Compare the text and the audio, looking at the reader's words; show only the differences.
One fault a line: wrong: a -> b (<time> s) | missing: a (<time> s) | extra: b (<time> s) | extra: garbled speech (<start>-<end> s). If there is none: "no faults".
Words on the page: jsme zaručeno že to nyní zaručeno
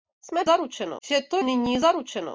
no faults